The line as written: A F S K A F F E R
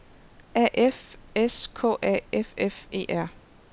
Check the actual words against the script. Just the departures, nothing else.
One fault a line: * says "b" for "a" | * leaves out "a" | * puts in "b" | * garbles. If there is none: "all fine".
all fine